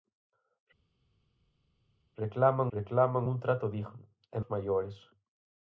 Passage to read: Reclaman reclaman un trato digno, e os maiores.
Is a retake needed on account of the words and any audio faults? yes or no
no